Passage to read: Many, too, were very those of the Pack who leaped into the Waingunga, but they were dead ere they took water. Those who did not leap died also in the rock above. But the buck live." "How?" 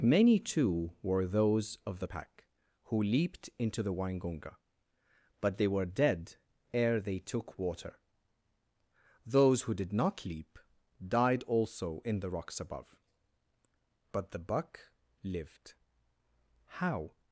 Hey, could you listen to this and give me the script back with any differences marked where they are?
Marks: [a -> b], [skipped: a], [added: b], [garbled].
Many, too, were [skipped: very] those of the Pack who leaped into the Waingunga, but they were dead ere they took water. Those who did not leap died also in the [rock -> rocks] above. But the buck [live." -> lived] "How?"